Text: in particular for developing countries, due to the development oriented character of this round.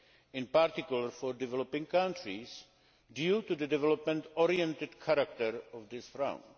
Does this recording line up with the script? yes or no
yes